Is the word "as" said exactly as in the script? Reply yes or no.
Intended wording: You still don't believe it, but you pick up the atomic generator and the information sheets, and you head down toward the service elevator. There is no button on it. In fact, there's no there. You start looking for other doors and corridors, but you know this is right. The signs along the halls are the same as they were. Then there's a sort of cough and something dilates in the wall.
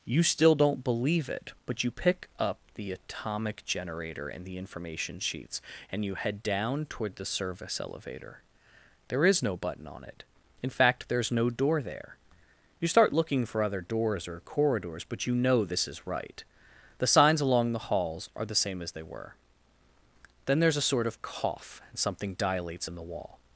yes